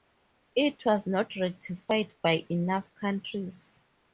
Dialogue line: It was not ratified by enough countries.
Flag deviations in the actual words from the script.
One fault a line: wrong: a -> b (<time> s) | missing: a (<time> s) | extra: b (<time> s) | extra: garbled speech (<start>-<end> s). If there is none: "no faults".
no faults